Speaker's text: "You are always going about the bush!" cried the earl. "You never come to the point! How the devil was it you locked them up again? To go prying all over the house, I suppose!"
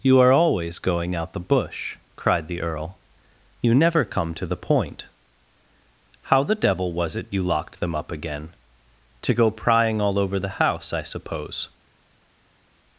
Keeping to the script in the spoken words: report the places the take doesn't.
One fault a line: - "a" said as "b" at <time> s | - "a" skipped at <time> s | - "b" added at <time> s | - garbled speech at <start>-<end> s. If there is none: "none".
- "about" said as "out" at 1.1 s